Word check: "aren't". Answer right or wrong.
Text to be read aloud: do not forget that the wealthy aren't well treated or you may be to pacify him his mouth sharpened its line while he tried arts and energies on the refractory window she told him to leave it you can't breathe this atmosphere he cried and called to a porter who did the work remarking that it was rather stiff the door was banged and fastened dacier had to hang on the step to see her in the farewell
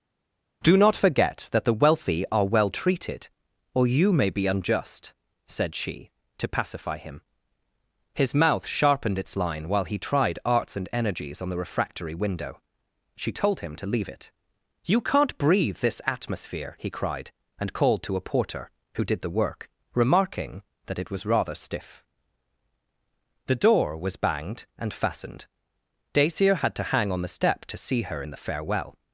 wrong